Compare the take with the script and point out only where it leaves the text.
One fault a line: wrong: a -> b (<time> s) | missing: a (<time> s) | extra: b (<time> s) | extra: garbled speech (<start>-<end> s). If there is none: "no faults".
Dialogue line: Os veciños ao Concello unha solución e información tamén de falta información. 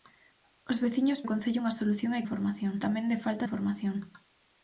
no faults